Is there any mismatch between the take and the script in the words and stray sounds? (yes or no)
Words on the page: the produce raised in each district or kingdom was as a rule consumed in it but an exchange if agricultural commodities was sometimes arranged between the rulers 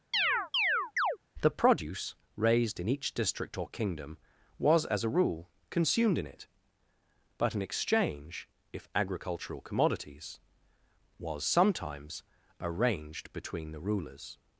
yes